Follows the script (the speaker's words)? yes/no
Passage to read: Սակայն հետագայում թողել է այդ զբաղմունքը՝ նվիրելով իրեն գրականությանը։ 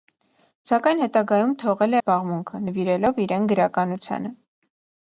no